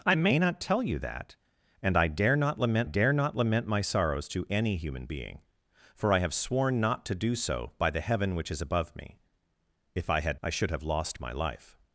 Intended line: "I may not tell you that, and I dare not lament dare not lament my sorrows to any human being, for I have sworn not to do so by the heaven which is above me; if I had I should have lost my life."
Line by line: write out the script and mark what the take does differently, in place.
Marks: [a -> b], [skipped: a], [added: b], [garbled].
"I may not tell you that, and I dare not lament dare not lament my sorrows to any human being, for I have sworn not to do so by the heaven which is above me; if I had I should have lost my life."